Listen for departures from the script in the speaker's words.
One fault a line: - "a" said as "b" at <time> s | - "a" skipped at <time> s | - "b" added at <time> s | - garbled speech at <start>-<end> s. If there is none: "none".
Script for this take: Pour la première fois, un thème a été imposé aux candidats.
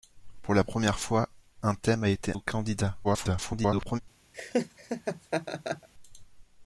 - "imposé" skipped at 2.4 s
- garbled speech at 3.0-4.0 s